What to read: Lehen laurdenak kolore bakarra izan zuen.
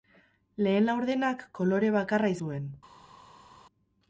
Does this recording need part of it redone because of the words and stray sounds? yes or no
yes